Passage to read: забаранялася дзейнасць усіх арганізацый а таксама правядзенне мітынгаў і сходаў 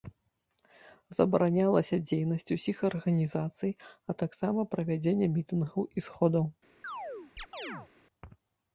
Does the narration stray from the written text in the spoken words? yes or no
no